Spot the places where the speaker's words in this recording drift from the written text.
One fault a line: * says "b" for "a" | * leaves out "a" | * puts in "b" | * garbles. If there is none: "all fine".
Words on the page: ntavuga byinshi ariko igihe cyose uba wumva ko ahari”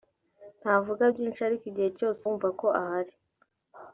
* leaves out "uba"